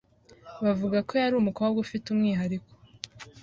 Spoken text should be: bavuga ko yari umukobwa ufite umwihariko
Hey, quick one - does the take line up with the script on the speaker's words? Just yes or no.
yes